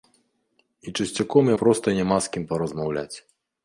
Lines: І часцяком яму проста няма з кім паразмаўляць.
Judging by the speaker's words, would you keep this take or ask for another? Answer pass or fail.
fail